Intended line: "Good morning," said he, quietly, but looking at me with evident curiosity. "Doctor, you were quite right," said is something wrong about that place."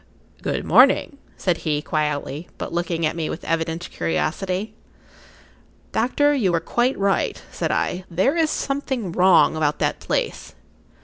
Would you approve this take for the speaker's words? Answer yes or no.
no